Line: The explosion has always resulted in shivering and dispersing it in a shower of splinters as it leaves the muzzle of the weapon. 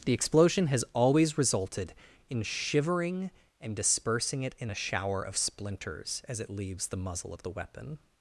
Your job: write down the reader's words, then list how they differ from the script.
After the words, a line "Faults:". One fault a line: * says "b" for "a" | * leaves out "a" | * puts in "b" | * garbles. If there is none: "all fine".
The explosion has always resulted in shivering and dispersing it in a shower of splinters as it leaves the muzzle of the weapon.
Faults:
all fine